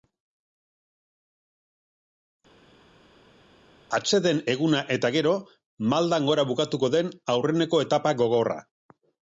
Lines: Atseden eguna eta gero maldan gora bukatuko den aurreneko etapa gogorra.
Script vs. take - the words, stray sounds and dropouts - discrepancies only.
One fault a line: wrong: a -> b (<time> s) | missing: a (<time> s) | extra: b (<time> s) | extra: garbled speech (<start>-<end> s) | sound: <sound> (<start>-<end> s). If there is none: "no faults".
no faults